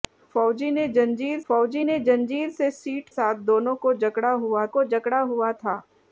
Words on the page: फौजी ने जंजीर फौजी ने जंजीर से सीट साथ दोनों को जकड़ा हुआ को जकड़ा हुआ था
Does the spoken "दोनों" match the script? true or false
true